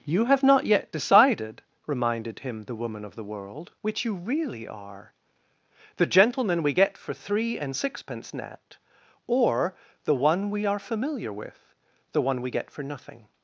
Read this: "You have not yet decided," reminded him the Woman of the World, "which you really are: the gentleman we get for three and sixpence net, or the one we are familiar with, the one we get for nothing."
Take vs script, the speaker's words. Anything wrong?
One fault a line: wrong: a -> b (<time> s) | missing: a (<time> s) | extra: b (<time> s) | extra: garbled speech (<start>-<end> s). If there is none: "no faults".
no faults